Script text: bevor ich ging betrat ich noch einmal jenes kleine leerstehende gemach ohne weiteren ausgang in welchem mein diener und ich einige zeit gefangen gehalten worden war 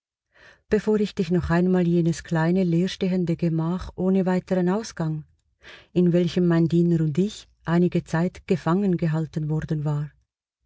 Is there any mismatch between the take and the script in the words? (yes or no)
yes